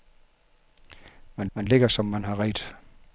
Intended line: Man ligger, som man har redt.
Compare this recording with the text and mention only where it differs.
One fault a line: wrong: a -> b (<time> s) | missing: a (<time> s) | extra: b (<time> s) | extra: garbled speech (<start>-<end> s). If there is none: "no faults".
extra: man (1.5 s)